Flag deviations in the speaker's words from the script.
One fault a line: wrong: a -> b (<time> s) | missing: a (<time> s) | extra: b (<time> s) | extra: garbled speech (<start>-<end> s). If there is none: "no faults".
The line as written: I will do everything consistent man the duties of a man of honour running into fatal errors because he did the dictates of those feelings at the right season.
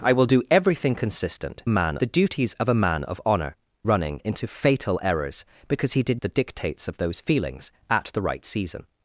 no faults